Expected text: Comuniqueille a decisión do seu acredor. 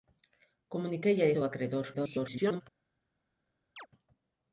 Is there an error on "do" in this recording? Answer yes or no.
yes